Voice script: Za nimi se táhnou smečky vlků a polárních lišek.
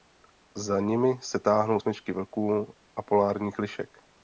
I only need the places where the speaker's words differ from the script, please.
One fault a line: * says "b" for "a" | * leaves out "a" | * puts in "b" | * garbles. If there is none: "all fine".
all fine